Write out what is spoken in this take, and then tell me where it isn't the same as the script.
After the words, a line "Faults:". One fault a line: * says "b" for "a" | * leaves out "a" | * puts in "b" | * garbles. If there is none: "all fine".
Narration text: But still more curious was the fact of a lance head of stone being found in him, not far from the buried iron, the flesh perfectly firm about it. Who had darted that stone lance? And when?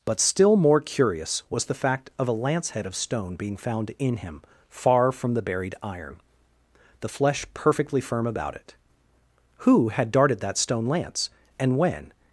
But still more curious was the fact of a lance head of stone being found in him, far from the buried iron, the flesh perfectly firm about it. Who had darted that stone lance? And when?
Faults:
* leaves out "not"